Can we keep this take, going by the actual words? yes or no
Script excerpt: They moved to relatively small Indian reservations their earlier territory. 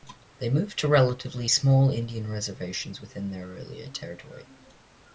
no